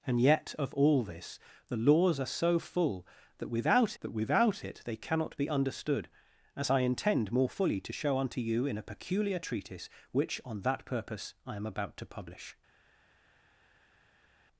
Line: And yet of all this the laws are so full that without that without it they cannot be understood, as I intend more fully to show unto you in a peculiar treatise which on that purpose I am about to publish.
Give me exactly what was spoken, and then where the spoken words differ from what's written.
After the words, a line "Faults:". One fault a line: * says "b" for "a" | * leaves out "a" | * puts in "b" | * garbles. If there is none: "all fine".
And yet of all this the laws are so full that without that without it they cannot be understood, as I intend more fully to show unto you in a peculiar treatise which on that purpose I am about to publish.
Faults:
all fine